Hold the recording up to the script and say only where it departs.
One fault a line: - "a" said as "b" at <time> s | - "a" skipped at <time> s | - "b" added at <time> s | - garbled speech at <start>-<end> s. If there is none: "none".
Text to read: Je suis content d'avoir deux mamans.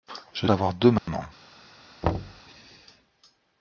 - "suis content" skipped at 0.5 s